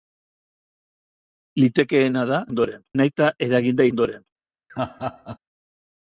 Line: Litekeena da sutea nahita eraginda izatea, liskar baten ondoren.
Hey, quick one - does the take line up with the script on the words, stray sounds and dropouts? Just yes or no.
no